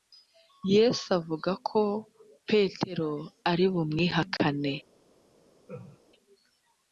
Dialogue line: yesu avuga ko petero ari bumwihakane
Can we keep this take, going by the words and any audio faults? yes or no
no